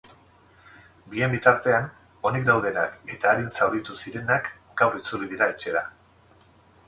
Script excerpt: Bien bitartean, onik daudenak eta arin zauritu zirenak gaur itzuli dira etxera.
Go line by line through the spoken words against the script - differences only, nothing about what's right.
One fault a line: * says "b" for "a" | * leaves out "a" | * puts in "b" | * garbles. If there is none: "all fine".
all fine